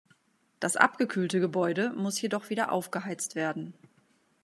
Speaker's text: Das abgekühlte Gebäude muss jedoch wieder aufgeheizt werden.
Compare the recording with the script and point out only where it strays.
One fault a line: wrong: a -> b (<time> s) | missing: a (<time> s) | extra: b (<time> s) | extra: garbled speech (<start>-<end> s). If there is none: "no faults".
no faults